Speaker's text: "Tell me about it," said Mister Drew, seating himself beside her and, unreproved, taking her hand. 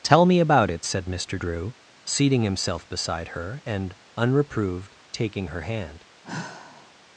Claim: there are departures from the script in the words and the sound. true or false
true